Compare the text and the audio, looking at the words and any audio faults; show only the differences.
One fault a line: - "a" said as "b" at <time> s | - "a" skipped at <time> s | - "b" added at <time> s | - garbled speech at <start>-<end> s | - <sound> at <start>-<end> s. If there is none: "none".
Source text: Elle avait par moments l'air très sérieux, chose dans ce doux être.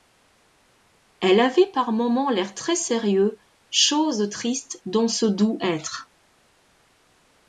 - "triste" added at 4.3 s